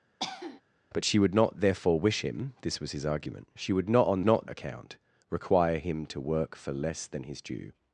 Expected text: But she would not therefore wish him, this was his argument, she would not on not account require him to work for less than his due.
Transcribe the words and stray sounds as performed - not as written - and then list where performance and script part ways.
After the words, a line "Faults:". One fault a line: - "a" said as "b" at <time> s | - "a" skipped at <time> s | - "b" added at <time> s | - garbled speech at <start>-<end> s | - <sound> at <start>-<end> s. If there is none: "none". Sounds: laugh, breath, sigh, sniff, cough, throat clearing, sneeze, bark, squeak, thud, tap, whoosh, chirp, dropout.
But she would not therefore wish him, this was his argument, she would not on not account require him to work for less than his due.
Faults:
- cough at 0.2-0.6 s